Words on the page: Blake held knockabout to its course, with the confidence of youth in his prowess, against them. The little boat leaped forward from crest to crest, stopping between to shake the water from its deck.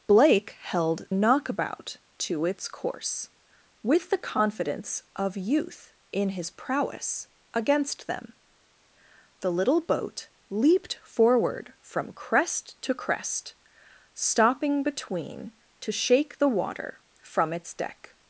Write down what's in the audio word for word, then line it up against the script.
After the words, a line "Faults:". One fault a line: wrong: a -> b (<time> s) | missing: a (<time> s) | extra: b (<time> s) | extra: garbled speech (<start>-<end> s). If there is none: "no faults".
Blake held knockabout to its course, with the confidence of youth in his prowess, against them. The little boat leaped forward from crest to crest, stopping between to shake the water from its deck.
Faults:
no faults